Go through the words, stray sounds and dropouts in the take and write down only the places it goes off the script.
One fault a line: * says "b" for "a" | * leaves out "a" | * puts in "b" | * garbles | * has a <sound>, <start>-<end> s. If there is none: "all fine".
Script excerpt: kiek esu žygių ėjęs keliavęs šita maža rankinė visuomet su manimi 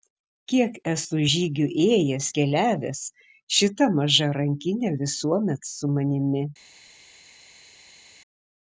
all fine